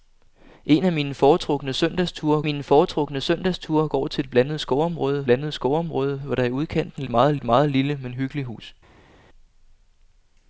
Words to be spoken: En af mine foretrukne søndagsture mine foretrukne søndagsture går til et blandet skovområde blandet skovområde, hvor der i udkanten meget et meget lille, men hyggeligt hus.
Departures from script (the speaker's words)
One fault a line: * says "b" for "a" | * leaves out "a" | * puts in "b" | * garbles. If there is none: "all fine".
all fine